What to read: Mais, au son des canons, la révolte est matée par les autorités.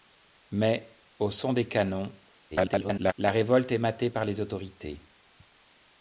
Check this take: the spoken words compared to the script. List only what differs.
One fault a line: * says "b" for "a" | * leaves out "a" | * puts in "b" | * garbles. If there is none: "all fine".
* garbles